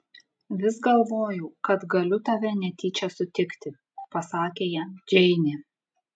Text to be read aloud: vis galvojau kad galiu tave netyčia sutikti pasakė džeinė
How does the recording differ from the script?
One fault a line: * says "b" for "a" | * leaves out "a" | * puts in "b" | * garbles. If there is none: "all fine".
* puts in "jam"